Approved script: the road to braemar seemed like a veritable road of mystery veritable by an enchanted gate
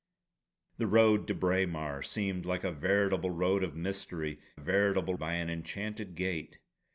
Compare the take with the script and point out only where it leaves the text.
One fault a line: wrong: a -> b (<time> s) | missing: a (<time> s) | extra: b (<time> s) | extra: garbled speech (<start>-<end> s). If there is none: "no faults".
no faults